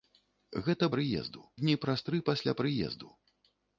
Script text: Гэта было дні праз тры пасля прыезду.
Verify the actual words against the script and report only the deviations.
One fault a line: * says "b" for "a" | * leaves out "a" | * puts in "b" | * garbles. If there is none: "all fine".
* says "прыезду" for "было"